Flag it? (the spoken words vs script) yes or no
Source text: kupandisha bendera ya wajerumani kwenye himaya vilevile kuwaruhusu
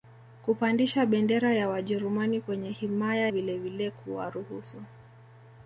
no